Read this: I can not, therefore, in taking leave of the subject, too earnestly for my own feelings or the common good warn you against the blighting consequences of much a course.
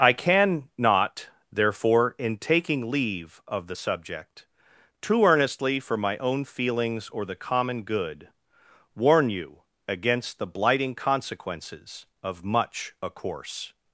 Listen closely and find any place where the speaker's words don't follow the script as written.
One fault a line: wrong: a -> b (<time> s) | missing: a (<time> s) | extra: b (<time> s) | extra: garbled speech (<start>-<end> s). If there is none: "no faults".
no faults